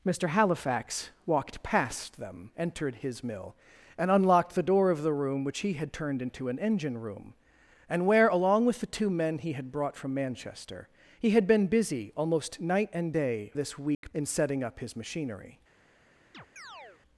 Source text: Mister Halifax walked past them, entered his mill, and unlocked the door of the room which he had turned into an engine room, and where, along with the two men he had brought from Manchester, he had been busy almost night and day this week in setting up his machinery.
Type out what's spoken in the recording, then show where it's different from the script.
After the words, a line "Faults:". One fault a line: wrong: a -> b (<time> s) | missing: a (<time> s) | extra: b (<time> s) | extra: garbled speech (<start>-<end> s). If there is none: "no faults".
Mister Halifax walked past them, entered his mill, and unlocked the door of the room which he had turned into an engine room, and where, along with the two men he had brought from Manchester, he had been busy almost night and day this week in setting up his machinery.
Faults:
no faults